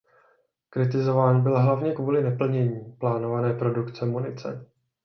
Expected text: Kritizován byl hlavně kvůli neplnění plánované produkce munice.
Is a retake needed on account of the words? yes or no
no